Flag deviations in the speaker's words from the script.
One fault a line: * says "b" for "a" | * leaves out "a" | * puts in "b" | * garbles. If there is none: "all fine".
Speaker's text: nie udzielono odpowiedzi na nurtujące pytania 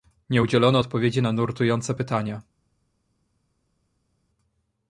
all fine